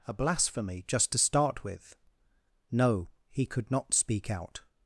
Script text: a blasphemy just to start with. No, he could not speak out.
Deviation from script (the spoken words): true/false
false